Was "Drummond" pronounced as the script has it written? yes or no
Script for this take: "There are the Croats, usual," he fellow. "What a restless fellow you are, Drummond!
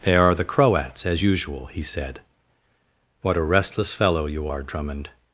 yes